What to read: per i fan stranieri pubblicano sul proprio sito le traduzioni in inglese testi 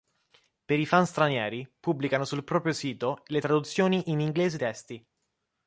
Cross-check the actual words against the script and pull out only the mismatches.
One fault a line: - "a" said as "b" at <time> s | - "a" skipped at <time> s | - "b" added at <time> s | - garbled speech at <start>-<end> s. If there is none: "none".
none